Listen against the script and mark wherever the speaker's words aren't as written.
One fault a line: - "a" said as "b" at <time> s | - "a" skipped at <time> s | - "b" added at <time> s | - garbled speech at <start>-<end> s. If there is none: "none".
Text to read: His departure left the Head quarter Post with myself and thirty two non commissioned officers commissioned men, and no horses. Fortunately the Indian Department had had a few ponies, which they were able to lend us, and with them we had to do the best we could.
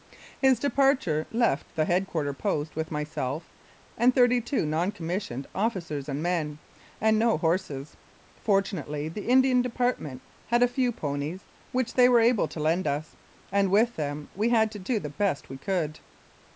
- "commissioned" said as "and" at 6.1 s
- "had" skipped at 10.6 s